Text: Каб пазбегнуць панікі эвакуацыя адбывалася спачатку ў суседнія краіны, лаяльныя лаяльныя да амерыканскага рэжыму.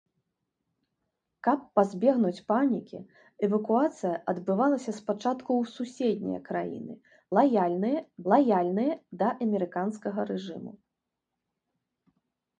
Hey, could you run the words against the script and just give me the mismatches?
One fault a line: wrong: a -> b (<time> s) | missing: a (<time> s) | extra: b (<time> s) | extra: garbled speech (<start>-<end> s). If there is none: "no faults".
no faults